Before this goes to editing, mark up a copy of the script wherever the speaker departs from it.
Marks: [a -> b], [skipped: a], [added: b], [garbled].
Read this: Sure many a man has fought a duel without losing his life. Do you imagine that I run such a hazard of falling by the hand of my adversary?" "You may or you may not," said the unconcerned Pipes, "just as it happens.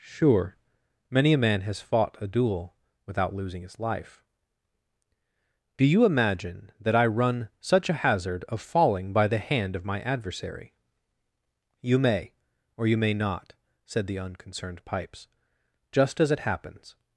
Sure many a man has fought a duel without losing his life. Do you imagine that I run such a hazard of falling by the hand of my adversary?" "You may or you may not," said the unconcerned Pipes, "just as it happens.